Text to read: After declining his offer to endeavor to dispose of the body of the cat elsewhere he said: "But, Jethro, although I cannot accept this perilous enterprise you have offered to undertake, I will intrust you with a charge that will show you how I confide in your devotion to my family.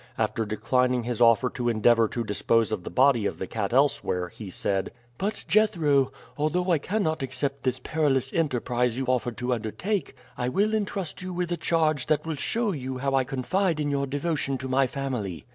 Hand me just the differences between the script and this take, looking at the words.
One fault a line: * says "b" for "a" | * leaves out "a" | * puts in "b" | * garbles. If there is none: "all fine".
* leaves out "have"